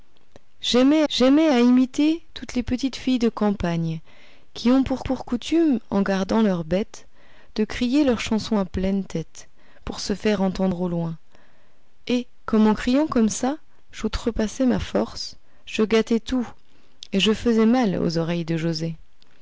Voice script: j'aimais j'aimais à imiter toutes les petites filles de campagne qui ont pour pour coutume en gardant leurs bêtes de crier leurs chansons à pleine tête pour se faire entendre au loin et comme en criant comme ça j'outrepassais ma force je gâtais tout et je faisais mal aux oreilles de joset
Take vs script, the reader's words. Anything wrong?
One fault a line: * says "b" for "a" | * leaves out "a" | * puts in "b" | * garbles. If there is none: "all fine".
all fine